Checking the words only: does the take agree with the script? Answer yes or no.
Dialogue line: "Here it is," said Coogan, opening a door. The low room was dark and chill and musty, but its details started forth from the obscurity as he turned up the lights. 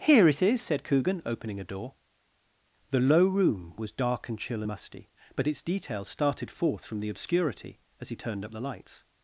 no